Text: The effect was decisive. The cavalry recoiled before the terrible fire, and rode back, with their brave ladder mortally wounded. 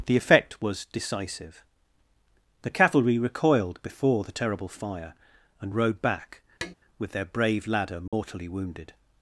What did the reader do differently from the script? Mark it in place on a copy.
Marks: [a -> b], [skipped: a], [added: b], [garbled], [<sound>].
The effect was decisive. The cavalry recoiled before the terrible fire, and rode back, [tap] with their brave ladder mortally [dropout] wounded.